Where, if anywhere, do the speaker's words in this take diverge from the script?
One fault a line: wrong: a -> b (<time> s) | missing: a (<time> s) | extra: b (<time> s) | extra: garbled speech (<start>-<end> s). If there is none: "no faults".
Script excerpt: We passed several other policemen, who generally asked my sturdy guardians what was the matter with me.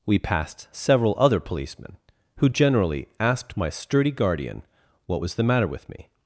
wrong: guardians -> guardian (4.1 s)